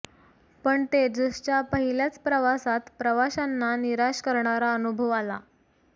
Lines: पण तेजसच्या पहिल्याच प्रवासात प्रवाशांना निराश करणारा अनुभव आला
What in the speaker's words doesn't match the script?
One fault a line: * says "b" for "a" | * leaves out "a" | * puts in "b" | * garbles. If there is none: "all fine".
all fine